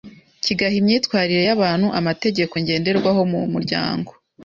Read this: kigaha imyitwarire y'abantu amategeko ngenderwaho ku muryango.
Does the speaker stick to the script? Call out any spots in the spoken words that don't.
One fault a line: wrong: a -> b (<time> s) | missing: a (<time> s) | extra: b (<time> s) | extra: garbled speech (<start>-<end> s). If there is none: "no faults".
wrong: ku -> mu (3.3 s)